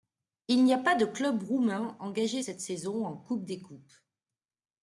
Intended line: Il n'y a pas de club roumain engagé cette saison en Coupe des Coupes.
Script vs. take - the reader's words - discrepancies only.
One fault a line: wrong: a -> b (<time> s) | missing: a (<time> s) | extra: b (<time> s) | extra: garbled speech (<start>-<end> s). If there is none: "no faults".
no faults